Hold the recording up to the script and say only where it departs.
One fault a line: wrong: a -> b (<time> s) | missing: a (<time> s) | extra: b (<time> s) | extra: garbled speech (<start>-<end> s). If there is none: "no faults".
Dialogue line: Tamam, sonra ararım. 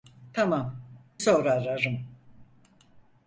no faults